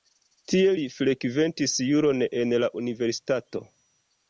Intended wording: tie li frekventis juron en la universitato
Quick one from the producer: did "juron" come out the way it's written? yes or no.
yes